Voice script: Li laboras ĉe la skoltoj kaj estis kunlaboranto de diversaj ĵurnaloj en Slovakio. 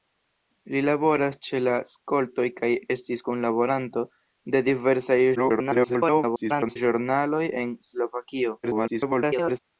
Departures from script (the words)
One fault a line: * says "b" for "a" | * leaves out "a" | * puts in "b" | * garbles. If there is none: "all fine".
* garbles
* garbles